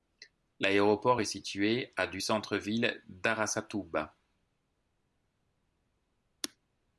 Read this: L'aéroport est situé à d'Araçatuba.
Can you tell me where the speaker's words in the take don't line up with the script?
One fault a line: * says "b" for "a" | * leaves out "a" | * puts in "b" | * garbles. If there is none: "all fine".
* puts in "du centre ville"